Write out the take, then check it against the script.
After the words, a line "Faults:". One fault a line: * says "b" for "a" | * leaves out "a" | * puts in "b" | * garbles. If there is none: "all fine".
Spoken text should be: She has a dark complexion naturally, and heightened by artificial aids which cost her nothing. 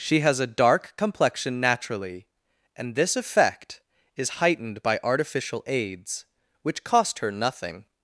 She has a dark complexion naturally, and this effect is heightened by artificial aids which cost her nothing.
Faults:
* puts in "this effect is"